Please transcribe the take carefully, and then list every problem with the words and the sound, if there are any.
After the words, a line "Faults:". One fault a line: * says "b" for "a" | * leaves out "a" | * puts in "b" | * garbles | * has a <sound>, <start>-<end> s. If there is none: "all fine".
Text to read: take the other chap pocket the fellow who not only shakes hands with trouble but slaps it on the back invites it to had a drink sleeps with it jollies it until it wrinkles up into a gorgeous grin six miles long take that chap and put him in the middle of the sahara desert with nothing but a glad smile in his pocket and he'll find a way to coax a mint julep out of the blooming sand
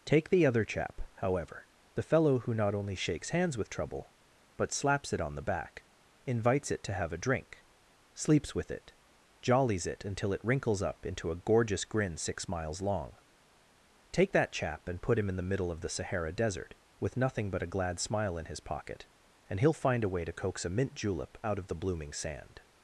take the other chap however the fellow who not only shakes hands with trouble but slaps it on the back invites it to have a drink sleeps with it jollies it until it wrinkles up into a gorgeous grin six miles long take that chap and put him in the middle of the sahara desert with nothing but a glad smile in his pocket and he'll find a way to coax a mint julep out of the blooming sand
Faults:
* says "however" for "pocket"
* says "have" for "had"